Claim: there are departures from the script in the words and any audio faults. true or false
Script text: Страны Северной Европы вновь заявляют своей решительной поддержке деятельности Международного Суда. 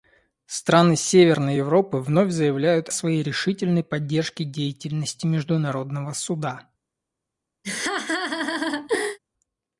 true